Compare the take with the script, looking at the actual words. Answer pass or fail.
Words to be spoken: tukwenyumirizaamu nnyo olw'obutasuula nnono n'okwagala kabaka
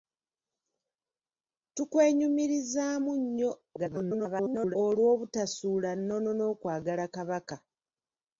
fail